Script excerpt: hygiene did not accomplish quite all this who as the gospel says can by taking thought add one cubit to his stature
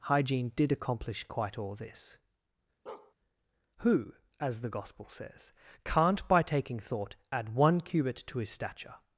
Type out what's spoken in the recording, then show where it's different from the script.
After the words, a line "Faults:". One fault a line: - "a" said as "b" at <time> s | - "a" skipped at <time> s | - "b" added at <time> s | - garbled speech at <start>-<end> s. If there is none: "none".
hygiene did accomplish quite all this who as the gospel says can't by taking thought add one cubit to his stature
Faults:
- "not" skipped at 0.7 s
- "can" said as "can't" at 5.8 s